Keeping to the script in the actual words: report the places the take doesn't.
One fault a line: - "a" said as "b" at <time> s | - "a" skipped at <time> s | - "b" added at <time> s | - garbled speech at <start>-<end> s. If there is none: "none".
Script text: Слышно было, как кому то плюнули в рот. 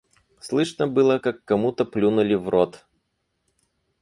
none